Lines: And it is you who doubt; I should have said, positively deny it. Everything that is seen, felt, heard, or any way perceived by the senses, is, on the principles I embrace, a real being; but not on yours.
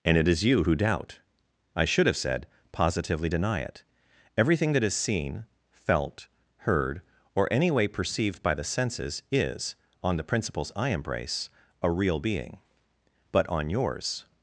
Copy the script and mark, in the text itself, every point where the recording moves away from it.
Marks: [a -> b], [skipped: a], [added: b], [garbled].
And it is you who doubt; I should have said, positively deny it. Everything that is seen, felt, heard, or any way perceived by the senses, is, on the principles I embrace, a real being; but [skipped: not] on yours.